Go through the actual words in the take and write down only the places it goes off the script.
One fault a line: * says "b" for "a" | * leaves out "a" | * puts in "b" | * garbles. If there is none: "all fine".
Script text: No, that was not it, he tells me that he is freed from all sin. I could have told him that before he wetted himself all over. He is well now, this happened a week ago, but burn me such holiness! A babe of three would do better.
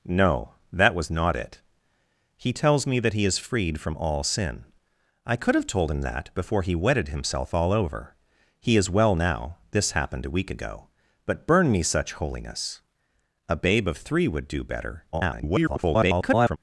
* garbles